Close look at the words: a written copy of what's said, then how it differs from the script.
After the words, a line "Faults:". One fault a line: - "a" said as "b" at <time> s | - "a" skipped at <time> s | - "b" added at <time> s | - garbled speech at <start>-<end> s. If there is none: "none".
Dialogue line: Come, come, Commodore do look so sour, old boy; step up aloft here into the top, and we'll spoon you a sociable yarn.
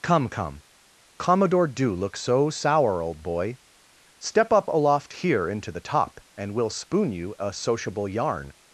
Come, come, Commodore do look so sour, old boy; step up aloft here into the top, and we'll spoon you a sociable yarn.
Faults:
none